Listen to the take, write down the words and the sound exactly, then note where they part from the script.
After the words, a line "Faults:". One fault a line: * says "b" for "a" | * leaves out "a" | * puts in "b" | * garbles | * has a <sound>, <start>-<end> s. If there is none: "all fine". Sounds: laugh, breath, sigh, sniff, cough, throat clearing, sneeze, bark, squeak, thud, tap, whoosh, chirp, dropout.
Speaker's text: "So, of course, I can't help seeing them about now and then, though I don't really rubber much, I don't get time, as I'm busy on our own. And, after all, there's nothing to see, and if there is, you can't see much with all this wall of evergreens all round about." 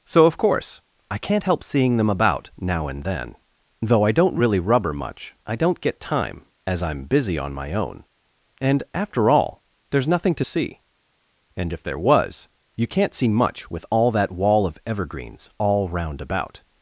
"So, of course, I can't help seeing them about now and then, though I don't really rubber much, I don't get time, as I'm busy on my own. And, after all, there's nothing to see, and if there was, you can't see much with all that wall of evergreens all round about."
Faults:
* says "my" for "our"
* says "was" for "is"
* says "that" for "this"